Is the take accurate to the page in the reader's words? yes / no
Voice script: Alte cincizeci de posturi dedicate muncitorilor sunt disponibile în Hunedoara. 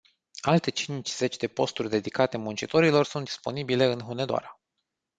yes